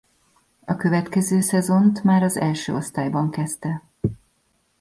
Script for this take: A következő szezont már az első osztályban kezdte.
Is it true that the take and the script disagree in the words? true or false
false